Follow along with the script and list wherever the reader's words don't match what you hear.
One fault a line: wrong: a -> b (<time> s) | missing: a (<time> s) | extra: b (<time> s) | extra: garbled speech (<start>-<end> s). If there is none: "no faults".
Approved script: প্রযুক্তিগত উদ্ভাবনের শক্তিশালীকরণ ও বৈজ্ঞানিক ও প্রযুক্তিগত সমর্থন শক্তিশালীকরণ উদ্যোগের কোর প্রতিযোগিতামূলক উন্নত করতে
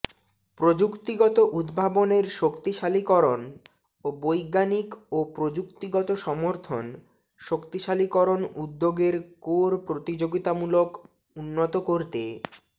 no faults